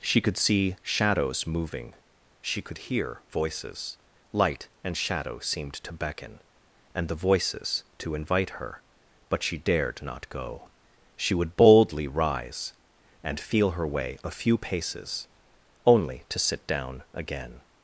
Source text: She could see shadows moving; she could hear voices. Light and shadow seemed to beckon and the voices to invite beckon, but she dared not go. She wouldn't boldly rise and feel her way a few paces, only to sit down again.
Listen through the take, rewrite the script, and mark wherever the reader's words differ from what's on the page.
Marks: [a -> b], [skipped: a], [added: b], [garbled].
She could see shadows moving; she could hear voices. Light and shadow seemed to beckon and the voices to invite [beckon, -> her] but she dared not go. She [wouldn't -> would] boldly rise and feel her way a few paces, only to sit down again.